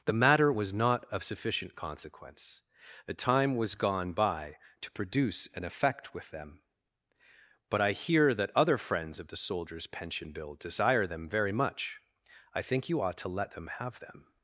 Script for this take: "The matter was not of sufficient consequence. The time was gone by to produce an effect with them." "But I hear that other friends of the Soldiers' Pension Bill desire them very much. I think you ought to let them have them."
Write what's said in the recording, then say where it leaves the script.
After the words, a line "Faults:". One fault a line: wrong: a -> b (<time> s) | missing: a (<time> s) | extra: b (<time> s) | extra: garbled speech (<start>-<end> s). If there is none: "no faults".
"The matter was not of sufficient consequence. The time was gone by to produce an effect with them." "But I hear that other friends of the Soldiers' Pension Bill desire them very much. I think you ought to let them have them."
Faults:
no faults